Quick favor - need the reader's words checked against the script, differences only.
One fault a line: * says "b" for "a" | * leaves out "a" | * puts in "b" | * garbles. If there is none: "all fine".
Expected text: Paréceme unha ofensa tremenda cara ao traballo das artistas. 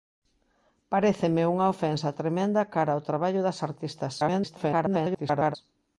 * garbles